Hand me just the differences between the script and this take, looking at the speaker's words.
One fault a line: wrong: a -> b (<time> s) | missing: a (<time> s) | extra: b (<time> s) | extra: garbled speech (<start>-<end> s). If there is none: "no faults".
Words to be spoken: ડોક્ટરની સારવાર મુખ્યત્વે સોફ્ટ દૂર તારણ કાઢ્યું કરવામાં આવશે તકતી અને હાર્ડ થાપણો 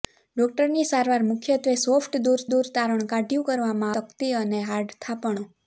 extra: દૂર (2.5 s)
missing: આવશે (4.0 s)